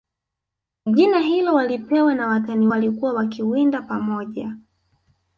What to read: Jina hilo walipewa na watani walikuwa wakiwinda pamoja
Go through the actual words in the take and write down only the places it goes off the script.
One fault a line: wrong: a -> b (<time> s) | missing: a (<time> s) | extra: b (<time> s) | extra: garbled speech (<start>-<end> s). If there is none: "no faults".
no faults